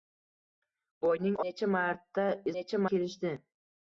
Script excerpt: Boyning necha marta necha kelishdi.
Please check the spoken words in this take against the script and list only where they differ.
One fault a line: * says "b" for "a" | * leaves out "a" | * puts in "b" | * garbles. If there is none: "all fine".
all fine